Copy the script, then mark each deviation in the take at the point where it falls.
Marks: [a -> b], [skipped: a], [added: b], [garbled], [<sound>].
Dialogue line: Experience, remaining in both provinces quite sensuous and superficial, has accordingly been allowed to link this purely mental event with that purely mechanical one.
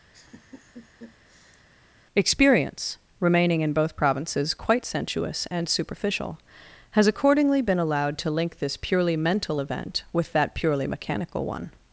[laugh] Experience, remaining in both provinces quite sensuous and superficial, has accordingly been allowed to link this purely mental event with that purely mechanical one.